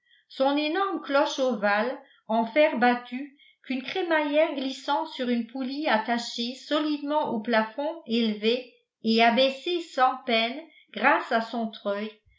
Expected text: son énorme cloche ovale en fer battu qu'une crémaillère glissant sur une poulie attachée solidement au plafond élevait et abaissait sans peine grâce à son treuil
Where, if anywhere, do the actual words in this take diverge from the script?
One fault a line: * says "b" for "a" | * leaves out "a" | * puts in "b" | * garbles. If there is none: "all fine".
all fine